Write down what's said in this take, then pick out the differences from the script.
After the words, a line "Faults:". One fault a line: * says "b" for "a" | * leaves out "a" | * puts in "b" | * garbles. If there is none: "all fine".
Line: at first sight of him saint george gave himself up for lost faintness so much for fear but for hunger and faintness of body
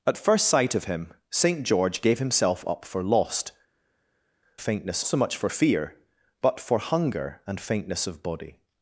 at first sight of him saint george gave himself up for lost faintness so much for fear but for hunger and faintness of body
Faults:
all fine